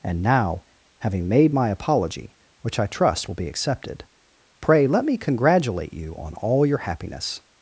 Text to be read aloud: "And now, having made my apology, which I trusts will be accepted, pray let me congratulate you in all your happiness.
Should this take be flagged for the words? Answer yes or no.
yes